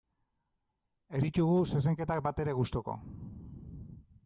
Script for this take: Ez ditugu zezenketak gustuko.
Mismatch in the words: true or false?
true